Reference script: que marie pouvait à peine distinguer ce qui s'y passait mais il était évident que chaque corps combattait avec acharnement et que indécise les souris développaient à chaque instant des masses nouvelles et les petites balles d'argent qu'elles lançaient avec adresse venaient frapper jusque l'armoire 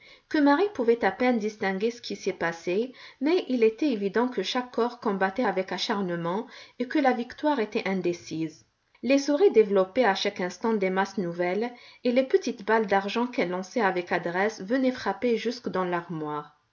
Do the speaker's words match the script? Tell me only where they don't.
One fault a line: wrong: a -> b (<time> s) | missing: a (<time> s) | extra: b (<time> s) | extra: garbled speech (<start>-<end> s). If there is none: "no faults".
extra: la victoire était (7.0 s)
extra: dans (15.7 s)